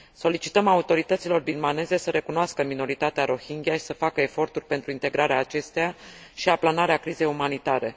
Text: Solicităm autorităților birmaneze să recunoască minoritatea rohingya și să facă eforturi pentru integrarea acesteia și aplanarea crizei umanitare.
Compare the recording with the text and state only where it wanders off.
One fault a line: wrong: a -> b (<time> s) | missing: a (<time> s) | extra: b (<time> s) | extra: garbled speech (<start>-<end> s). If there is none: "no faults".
no faults